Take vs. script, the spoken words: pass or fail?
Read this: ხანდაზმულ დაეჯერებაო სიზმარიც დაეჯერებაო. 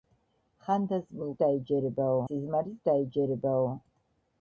pass